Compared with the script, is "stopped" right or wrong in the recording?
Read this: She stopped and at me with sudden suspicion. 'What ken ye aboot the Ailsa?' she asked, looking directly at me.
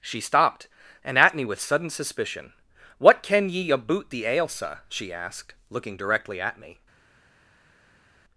right